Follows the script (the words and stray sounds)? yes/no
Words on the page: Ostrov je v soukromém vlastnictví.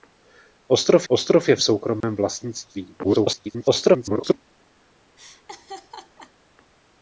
no